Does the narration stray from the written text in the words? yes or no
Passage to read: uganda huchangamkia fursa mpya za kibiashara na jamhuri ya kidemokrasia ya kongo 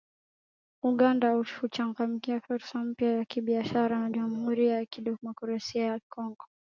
no